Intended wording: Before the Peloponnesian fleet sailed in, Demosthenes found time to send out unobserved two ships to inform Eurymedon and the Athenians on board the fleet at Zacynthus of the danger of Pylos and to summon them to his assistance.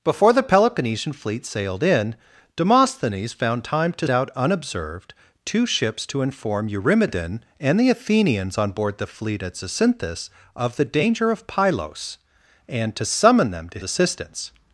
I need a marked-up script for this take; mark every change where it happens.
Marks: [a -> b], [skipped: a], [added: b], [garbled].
Before the Peloponnesian fleet sailed in, Demosthenes found time to [skipped: send] out unobserved two ships to inform Eurymedon and the Athenians on board the fleet at Zacynthus of the danger of Pylos and to summon them to [skipped: his] assistance.